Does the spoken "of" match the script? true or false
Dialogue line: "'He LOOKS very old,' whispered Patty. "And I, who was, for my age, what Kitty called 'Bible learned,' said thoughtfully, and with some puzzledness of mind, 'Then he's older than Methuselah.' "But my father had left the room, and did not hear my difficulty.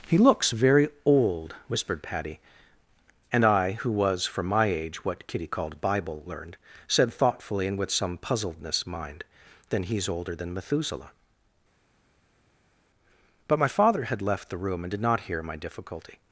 false